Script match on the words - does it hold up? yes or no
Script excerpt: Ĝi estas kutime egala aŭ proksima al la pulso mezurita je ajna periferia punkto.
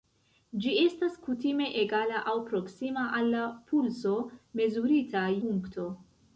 no